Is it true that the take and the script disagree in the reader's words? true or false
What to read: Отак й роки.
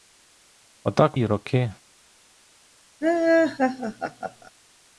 false